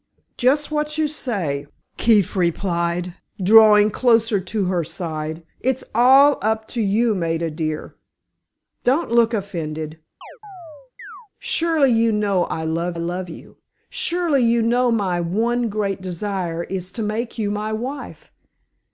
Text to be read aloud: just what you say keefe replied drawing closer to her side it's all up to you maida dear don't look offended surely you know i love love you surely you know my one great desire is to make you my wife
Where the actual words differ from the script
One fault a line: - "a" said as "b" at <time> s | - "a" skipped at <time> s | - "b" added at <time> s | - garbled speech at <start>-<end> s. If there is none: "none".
none